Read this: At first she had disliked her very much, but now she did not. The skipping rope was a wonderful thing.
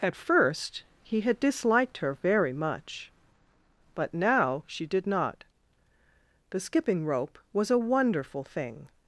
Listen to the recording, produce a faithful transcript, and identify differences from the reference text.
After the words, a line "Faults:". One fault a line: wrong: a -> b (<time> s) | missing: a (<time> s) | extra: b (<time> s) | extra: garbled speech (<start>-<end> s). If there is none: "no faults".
At first he had disliked her very much, but now she did not. The skipping rope was a wonderful thing.
Faults:
wrong: she -> he (1.0 s)